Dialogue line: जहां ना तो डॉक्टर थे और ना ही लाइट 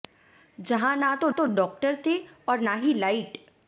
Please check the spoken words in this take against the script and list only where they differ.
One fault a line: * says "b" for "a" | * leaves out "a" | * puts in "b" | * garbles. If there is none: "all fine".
* puts in "तो"